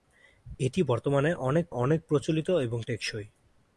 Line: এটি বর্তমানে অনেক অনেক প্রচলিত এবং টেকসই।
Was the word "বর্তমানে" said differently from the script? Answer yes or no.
no